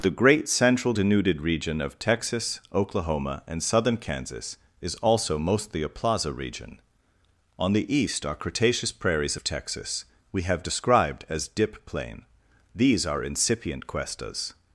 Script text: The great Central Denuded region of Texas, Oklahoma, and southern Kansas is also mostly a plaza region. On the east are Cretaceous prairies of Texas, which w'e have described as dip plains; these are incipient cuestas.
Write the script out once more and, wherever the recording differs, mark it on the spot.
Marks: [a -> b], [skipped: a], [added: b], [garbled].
The great Central Denuded region of Texas, Oklahoma, and southern Kansas is also mostly a plaza region. On the east are Cretaceous prairies of Texas, [skipped: which] w'e have described as dip [plains; -> plain] these are incipient cuestas.